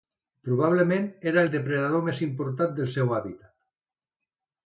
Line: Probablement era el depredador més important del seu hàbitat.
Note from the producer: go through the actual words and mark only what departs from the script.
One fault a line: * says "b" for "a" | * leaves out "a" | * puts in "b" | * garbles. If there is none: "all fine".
all fine